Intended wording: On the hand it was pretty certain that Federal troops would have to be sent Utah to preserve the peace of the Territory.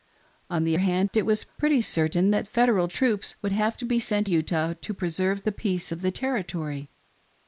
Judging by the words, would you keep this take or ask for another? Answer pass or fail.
pass